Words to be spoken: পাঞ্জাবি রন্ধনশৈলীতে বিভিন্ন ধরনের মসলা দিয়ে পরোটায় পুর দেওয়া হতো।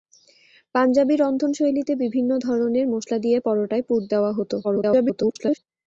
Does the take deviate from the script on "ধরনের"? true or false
false